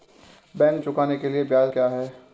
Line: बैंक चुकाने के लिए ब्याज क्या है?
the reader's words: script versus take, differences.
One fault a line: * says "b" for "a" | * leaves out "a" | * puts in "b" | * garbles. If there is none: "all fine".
all fine